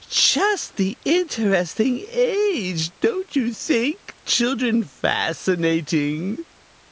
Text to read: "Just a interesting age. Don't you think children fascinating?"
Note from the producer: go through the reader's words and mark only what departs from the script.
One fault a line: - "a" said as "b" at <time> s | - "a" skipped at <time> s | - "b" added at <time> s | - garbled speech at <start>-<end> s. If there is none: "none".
- "a" said as "the" at 0.8 s